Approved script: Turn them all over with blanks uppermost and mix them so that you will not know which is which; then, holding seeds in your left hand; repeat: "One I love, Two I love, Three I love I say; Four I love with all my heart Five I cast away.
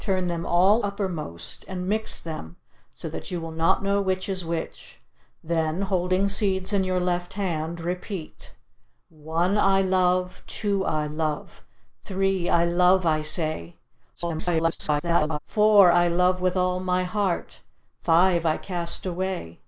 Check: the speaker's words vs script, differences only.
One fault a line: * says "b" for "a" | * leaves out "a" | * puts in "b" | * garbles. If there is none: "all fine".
* leaves out "over with blanks"
* garbles